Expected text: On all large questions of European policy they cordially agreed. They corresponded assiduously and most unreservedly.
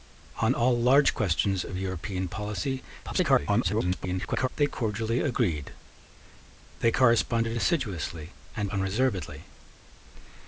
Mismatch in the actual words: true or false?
true